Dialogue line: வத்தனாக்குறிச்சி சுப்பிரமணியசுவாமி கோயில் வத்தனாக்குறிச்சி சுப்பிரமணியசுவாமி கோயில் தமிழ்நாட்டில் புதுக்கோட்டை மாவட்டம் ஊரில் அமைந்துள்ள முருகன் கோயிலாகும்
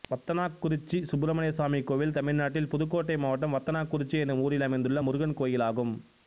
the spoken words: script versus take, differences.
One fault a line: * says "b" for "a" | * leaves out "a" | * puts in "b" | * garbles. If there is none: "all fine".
* leaves out "வத்தனாக்குறிச்சி சுப்பிரமணியசுவாமி கோயில்"
* puts in "வத்தனாக்குறிச்சி என்னும்"